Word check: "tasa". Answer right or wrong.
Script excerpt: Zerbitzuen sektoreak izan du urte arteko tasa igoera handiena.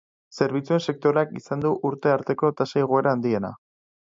right